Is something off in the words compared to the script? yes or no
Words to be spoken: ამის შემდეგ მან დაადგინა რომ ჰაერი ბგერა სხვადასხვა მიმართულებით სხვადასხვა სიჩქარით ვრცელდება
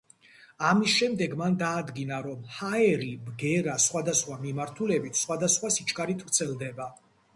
no